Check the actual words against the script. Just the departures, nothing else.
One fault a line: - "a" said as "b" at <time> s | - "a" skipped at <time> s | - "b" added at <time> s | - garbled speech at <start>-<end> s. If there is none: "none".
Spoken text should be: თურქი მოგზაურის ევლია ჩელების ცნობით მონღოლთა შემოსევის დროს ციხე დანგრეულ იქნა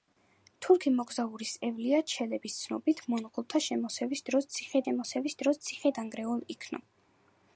- "შემოსევის დროს ციხე" added at 4.8 s